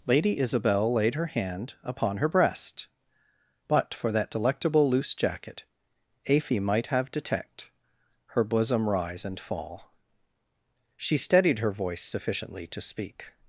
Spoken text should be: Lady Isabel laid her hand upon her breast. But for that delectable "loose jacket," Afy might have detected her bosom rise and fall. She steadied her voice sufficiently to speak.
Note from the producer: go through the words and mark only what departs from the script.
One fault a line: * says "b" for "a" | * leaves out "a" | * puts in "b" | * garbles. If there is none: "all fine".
* says "detect" for "detected"